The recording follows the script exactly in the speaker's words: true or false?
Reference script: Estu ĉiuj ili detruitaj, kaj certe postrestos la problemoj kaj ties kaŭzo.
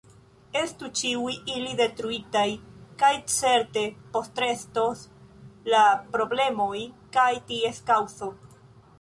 true